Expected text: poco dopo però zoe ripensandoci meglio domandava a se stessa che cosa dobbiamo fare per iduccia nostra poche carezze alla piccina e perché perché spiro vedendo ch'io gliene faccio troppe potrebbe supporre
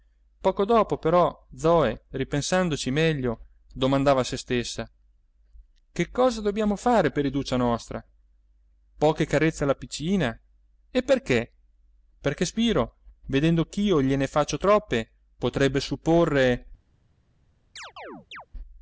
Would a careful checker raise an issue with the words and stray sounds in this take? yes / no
yes